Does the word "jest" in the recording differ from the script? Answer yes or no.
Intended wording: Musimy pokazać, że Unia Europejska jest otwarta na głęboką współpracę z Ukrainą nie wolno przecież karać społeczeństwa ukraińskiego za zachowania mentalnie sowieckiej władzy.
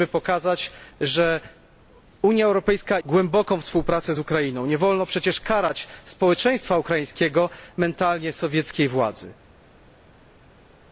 yes